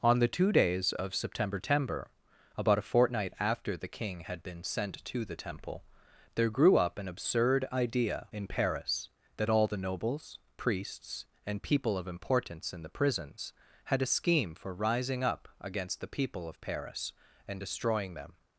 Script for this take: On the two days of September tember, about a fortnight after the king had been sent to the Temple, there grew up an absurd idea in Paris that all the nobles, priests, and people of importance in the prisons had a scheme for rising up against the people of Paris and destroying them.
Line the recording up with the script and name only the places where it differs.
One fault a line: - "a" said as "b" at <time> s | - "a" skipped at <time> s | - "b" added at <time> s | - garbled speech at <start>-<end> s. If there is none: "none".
none